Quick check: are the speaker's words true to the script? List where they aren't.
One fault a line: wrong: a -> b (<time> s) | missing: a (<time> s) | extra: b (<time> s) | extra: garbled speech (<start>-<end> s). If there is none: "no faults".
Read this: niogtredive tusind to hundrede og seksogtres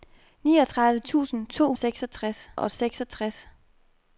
wrong: hundrede -> seksogtres (1.7 s)